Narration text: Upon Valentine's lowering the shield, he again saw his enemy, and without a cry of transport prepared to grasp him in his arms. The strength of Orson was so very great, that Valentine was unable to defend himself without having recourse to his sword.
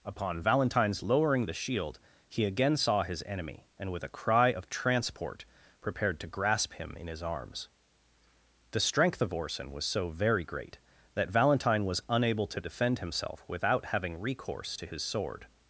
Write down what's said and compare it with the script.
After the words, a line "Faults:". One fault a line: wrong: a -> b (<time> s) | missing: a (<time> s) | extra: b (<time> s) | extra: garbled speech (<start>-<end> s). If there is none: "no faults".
Upon Valentine's lowering the shield, he again saw his enemy, and with a cry of transport prepared to grasp him in his arms. The strength of Orson was so very great, that Valentine was unable to defend himself without having recourse to his sword.
Faults:
wrong: without -> with (3.9 s)